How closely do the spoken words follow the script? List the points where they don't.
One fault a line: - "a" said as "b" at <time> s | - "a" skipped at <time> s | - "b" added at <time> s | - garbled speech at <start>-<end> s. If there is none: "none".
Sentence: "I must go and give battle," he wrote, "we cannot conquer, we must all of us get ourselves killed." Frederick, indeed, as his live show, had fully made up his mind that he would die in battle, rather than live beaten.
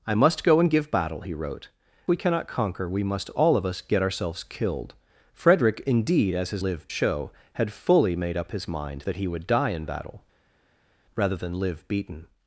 none